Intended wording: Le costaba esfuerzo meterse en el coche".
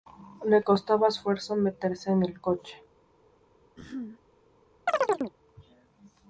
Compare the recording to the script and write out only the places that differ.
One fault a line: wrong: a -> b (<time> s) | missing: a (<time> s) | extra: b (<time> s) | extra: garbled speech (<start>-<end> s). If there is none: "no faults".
no faults